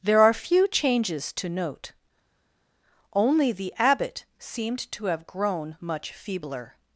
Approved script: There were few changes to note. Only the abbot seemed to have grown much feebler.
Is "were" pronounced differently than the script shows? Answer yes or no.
yes